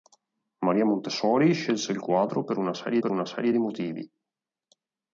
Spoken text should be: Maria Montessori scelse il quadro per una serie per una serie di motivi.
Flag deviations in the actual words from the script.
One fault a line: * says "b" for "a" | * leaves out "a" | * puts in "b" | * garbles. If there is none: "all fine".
all fine